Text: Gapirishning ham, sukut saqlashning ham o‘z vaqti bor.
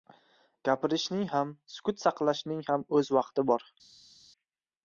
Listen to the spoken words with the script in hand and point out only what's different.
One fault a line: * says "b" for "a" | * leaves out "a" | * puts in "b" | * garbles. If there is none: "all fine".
all fine